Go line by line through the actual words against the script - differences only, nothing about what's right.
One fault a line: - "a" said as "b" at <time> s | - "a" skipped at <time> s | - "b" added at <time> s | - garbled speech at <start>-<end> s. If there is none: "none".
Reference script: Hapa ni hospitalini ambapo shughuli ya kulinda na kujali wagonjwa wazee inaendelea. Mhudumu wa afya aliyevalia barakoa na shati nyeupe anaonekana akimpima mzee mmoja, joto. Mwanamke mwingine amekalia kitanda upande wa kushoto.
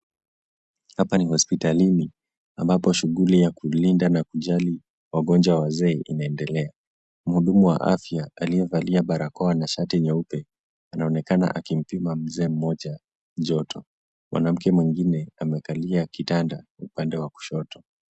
none